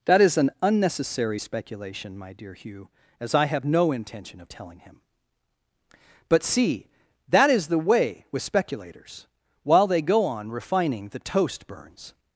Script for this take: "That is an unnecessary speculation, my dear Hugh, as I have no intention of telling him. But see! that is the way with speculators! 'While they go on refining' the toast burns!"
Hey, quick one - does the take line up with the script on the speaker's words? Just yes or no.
yes